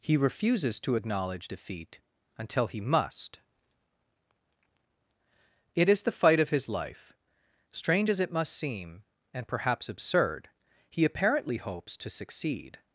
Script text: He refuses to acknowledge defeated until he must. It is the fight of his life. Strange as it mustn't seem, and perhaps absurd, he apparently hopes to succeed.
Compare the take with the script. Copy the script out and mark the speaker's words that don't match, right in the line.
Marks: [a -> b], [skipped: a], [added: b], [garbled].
He refuses to acknowledge [defeated -> defeat] until he must. It is the fight of his life. Strange as it [mustn't -> must] seem, and perhaps absurd, he apparently hopes to succeed.